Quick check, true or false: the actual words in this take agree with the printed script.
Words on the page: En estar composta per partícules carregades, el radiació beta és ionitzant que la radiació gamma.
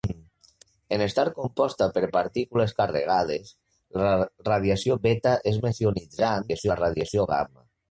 false